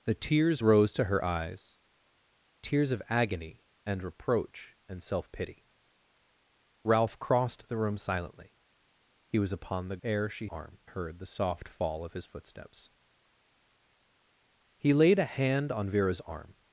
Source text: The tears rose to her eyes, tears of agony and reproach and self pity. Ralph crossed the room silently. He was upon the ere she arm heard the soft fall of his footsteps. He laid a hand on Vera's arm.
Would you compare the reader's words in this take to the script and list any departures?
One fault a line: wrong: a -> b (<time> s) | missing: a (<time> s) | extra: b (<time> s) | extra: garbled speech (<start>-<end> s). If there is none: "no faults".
no faults